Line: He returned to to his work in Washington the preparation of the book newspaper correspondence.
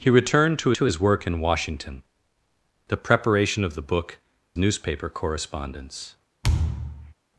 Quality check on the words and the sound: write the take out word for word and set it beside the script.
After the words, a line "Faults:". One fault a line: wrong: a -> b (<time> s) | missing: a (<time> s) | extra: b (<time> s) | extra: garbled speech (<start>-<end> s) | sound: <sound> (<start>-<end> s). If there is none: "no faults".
He returned to to his work in Washington the preparation of the book newspaper correspondence.
Faults:
sound: thud (6.4-7.1 s)